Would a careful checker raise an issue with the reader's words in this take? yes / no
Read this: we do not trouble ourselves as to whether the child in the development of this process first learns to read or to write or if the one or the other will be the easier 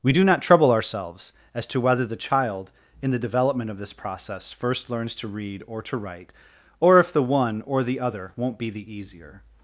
yes